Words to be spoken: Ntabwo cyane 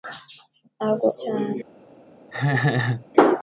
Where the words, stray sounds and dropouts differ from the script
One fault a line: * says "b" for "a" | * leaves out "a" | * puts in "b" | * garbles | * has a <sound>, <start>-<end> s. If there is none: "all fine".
* has a laugh, 2.3-3.1 s